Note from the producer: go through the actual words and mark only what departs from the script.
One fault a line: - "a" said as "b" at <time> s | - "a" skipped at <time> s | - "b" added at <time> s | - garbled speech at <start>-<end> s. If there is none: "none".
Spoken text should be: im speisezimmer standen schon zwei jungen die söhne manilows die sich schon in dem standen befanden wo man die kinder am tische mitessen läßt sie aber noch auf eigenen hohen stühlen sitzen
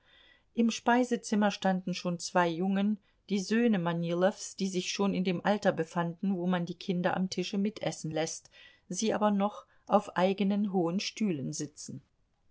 - "standen" said as "alter" at 5.5 s